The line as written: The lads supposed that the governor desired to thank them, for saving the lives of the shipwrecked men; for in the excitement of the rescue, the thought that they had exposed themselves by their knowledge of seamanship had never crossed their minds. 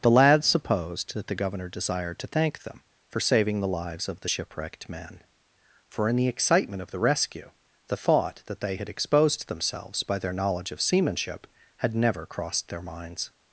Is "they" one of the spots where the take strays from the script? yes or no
no